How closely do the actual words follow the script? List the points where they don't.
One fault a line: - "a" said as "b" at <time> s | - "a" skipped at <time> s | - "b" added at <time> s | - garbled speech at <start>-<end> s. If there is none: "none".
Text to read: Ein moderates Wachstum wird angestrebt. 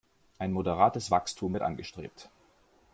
none